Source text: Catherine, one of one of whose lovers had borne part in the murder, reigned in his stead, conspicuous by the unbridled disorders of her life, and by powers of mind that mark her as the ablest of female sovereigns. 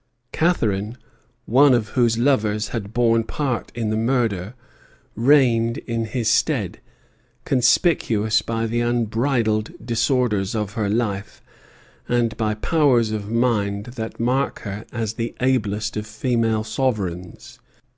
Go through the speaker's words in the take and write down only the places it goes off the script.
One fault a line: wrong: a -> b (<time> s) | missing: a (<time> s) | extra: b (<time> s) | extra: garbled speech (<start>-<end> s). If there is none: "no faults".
missing: one of (1.9 s)